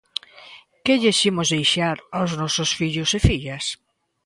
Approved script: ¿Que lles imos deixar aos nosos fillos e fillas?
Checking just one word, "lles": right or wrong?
right